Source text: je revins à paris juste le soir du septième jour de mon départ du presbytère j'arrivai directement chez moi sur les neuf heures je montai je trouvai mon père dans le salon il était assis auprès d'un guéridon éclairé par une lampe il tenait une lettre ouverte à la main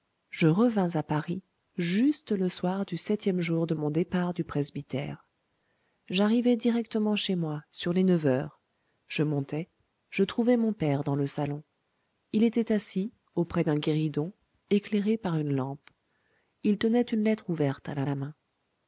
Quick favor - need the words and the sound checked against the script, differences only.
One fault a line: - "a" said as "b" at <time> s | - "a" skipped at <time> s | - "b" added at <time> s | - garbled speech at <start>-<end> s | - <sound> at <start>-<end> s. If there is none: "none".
- "la" added at 18.0 s